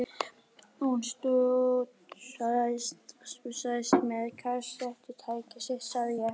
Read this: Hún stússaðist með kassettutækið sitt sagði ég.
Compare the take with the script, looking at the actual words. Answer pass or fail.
pass